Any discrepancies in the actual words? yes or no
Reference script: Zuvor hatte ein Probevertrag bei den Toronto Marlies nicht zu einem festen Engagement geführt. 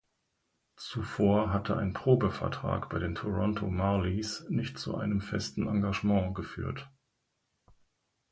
no